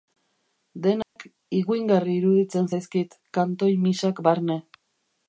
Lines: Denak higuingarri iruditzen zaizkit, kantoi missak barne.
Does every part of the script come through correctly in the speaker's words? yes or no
yes